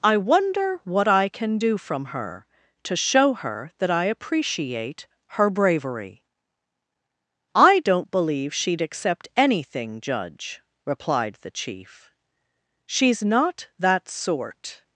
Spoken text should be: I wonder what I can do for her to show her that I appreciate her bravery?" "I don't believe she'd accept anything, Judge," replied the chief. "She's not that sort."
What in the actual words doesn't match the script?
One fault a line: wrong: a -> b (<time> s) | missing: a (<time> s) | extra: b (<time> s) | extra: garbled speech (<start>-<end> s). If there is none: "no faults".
wrong: for -> from (1.8 s)